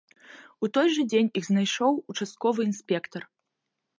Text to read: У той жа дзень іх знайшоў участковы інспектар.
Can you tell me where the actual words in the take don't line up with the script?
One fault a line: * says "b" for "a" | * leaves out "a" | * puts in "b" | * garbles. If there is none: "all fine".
all fine